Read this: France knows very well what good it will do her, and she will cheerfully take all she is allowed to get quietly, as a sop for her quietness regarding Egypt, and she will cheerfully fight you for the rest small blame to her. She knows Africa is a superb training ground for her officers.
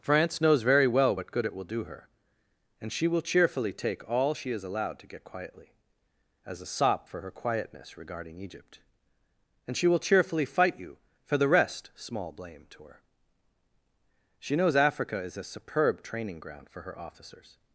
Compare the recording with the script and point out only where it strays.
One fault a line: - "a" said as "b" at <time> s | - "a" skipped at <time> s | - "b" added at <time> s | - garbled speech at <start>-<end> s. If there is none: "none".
none